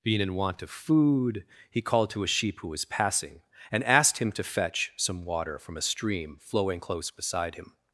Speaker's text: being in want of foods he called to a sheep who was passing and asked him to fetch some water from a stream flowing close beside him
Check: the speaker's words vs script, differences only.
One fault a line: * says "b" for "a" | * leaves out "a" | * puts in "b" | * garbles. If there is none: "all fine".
* says "food" for "foods"